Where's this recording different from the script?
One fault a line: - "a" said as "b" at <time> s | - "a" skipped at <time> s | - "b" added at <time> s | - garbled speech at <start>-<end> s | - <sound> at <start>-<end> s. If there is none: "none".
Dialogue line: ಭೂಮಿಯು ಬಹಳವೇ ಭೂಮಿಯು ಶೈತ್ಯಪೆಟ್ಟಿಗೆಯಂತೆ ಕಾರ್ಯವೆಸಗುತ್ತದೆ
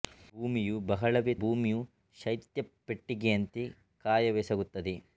none